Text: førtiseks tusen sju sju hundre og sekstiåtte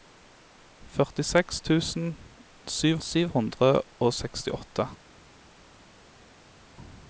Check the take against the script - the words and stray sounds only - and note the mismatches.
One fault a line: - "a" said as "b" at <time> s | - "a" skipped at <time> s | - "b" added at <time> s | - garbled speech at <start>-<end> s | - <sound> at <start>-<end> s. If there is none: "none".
none